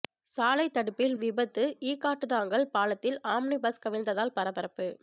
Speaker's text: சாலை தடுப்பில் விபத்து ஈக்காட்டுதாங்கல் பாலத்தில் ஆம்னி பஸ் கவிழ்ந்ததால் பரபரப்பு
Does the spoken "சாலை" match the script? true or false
true